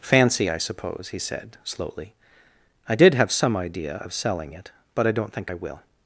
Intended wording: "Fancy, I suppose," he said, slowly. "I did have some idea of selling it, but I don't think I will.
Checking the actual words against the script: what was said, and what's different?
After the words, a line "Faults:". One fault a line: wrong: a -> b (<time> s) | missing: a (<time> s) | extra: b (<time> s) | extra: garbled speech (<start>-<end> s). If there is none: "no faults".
"Fancy, I suppose," he said, slowly. "I did have some idea of selling it, but I don't think I will.
Faults:
no faults